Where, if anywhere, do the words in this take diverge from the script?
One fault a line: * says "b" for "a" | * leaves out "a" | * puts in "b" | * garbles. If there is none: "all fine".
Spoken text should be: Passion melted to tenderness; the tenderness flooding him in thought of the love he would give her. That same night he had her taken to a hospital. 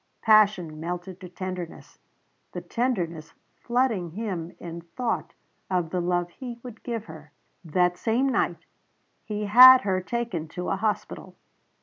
all fine